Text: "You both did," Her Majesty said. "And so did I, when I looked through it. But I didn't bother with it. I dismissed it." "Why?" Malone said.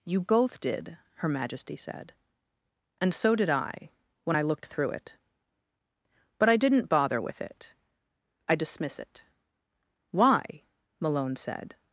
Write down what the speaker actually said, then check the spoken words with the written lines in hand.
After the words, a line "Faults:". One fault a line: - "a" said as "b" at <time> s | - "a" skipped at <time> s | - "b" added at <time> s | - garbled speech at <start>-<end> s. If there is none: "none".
"You both did," Her Majesty said. "And so did I, when I looked through it. But I didn't bother with it. I dismiss it." "Why?" Malone said.
Faults:
- "dismissed" said as "dismiss" at 8.5 s